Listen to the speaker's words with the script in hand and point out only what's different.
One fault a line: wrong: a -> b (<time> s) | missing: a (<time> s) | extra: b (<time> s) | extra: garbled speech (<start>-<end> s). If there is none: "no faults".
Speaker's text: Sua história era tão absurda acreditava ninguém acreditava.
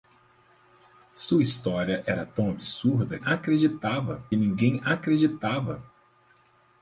no faults